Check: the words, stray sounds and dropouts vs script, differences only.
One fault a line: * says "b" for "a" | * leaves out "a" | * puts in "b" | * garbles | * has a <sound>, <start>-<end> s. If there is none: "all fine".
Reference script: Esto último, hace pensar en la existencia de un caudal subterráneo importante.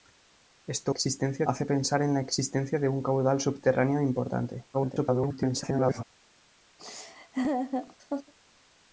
* says "existencia" for "último"
* garbles
* has a laugh, 6.8-8.3 s